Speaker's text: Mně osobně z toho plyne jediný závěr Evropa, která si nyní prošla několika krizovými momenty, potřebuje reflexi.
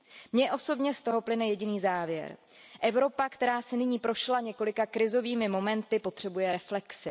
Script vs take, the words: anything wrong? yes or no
no